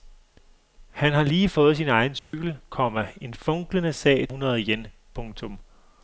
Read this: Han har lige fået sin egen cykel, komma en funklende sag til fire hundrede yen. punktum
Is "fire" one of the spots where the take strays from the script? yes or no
yes